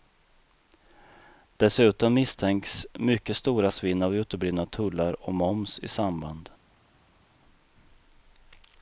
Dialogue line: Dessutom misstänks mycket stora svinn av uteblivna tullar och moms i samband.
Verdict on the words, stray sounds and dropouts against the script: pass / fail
pass